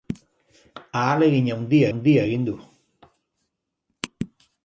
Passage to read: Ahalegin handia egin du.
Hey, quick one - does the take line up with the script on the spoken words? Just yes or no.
no